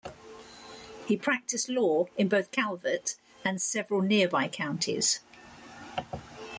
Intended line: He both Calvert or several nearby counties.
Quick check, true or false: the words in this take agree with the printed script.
false